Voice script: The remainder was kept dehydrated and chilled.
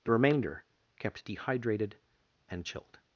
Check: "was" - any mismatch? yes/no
yes